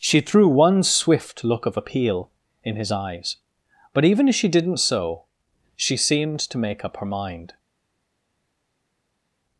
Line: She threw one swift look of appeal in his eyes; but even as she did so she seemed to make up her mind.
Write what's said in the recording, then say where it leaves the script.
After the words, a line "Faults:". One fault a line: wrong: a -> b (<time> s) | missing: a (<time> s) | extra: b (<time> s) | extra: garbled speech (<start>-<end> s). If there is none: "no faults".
She threw one swift look of appeal in his eyes; but even as she didn't so she seemed to make up her mind.
Faults:
wrong: did -> didn't (4.5 s)